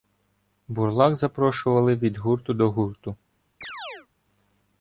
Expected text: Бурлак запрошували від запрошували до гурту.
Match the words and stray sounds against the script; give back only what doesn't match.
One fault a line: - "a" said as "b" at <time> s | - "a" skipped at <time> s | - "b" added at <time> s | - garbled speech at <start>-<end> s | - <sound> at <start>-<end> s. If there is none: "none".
- "запрошували" said as "гурту" at 2.2 s
- chirp at 3.6-4.1 s